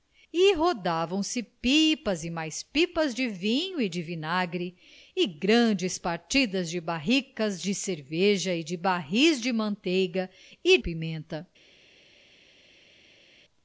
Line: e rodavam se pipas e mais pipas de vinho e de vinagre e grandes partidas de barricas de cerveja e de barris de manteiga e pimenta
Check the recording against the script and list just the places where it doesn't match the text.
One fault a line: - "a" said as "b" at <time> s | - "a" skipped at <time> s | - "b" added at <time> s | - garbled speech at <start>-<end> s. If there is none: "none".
none